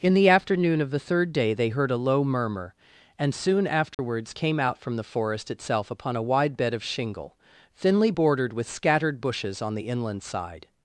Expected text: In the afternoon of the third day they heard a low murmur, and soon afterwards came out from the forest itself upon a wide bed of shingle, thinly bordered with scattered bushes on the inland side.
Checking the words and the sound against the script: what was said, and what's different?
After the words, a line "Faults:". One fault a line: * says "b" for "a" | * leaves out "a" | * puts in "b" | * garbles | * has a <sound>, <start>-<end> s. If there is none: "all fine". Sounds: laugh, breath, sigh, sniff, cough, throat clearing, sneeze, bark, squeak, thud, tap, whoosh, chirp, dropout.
In the afternoon of the third day they heard a low murmur, and soon afterwards came out from the forest itself upon a wide bed of shingle, thinly bordered with scattered bushes on the inland side.
Faults:
* has a dropout, 3.9-4.0 s